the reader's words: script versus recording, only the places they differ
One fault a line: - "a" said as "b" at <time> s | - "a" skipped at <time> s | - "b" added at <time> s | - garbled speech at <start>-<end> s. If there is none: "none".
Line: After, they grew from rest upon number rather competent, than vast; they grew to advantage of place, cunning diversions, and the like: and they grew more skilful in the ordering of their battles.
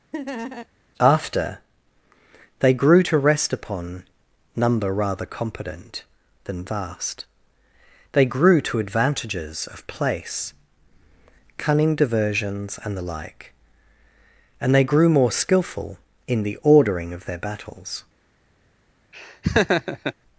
- "from" said as "to" at 3.0 s
- "advantage" said as "advantages" at 8.8 s